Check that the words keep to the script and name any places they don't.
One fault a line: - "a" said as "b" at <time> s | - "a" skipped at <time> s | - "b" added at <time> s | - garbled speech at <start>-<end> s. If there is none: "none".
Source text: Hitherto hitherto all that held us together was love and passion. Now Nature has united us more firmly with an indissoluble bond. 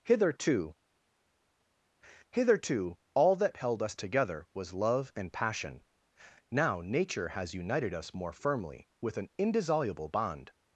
none